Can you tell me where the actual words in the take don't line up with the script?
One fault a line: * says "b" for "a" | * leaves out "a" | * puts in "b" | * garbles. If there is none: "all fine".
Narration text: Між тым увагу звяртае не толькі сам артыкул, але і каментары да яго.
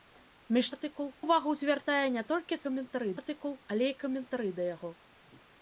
* says "артыкул" for "тым"
* says "каментары" for "сам"